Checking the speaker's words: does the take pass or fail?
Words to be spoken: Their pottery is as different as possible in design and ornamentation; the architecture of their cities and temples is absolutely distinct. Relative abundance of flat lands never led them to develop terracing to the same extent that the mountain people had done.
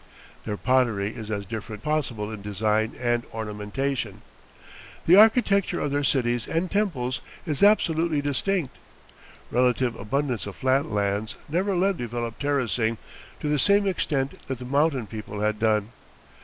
fail